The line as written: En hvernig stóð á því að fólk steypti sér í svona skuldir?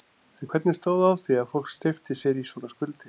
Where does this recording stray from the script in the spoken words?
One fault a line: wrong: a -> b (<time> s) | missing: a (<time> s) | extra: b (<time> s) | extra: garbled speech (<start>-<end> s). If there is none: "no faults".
no faults